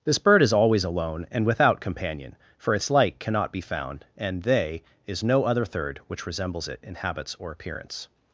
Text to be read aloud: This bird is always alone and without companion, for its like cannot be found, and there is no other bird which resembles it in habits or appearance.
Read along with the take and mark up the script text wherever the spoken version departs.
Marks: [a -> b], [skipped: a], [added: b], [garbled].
This bird is always alone and without companion, for its like cannot be found, and [there -> they] is no other [bird -> third] which resembles it in habits or appearance.